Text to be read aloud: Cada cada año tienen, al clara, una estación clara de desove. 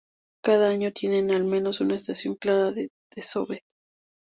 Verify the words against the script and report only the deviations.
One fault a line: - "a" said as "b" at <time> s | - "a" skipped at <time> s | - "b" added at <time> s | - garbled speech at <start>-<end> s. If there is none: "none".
- "cada" skipped at 0.7 s
- "clara" said as "menos" at 1.4 s